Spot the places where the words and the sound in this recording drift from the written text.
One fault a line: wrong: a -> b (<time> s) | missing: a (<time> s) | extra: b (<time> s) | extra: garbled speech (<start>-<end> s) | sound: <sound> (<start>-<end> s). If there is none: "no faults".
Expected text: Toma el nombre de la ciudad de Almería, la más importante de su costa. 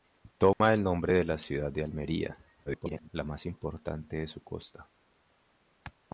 sound: dropout (0.5-0.6 s)
extra: garbled speech (2.7-3.1 s)